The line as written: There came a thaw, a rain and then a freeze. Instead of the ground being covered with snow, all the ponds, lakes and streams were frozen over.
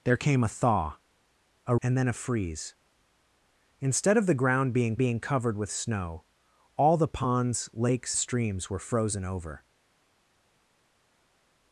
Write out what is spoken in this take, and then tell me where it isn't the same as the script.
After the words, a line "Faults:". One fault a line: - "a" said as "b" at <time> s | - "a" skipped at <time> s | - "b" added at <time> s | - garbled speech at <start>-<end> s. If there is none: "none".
There came a thaw, a and then a freeze. Instead of the ground being being covered with snow, all the ponds, lakes streams were frozen over.
Faults:
- "rain" skipped at 1.8 s
- "being" added at 5.0 s
- "and" skipped at 8.2 s